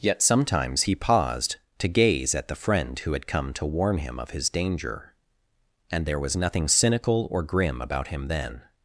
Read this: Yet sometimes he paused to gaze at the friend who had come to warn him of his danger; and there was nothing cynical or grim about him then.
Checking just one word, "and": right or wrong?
right